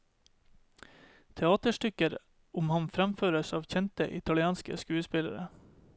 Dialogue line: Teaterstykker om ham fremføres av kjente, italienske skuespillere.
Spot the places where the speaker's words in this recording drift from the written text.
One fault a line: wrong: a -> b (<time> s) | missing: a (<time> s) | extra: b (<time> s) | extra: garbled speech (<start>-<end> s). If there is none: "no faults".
no faults